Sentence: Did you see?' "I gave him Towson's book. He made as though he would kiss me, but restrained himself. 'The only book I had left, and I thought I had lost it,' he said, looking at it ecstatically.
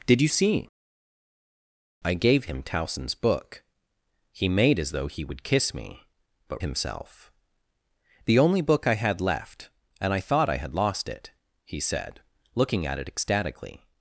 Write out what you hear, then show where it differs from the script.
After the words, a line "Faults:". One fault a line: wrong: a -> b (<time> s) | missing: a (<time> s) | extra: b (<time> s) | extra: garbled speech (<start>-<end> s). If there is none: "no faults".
Did you see?' "I gave him Towson's book. He made as though he would kiss me, but himself. 'The only book I had left, and I thought I had lost it,' he said, looking at it ecstatically.
Faults:
missing: restrained (6.6 s)